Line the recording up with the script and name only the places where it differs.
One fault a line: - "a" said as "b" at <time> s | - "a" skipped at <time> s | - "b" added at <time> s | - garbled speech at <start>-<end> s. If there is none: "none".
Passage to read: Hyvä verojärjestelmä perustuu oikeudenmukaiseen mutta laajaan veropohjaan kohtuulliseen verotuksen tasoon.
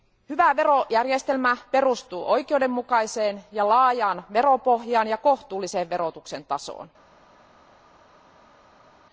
- "mutta" said as "ja" at 3.5 s
- "ja" added at 5.1 s